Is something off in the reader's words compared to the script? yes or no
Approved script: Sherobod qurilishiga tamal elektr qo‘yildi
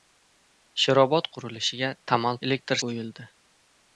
no